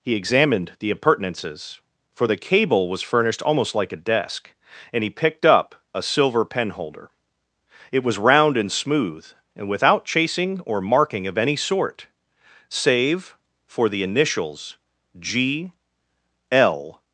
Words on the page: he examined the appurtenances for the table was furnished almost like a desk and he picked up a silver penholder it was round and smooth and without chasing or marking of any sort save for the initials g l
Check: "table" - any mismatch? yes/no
yes